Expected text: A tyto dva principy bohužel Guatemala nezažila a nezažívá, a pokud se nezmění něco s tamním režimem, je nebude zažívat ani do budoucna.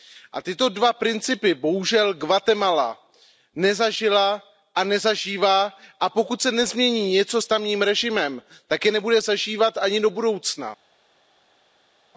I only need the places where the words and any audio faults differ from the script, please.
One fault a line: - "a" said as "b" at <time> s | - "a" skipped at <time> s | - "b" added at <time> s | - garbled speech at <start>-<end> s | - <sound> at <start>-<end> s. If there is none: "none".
- "tak" added at 8.7 s